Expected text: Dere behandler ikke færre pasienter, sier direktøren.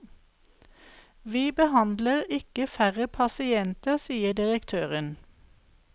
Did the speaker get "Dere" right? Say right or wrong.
wrong